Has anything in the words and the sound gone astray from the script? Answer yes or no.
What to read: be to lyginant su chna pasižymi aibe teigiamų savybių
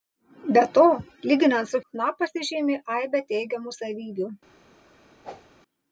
yes